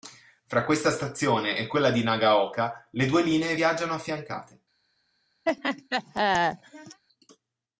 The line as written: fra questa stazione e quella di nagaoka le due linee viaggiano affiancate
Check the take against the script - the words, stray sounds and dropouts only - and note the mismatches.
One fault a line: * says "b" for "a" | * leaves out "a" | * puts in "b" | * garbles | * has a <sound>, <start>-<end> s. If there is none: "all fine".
* has a laugh, 5.5-7.0 s